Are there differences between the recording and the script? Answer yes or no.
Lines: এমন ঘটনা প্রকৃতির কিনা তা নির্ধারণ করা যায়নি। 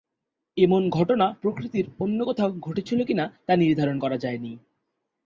yes